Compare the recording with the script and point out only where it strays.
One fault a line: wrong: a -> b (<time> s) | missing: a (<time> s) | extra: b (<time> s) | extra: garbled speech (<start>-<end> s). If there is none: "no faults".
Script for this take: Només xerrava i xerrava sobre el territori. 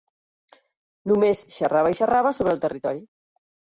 no faults